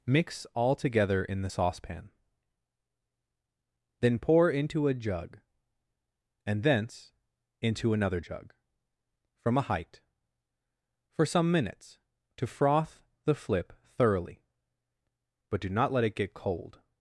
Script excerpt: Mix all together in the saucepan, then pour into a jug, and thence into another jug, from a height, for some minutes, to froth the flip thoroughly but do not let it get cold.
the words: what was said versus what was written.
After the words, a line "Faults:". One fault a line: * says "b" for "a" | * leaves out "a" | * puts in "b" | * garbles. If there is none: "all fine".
Mix all together in the saucepan, then pour into a jug, and thence into another jug, from a height, for some minutes, to froth the flip thoroughly but do not let it get cold.
Faults:
all fine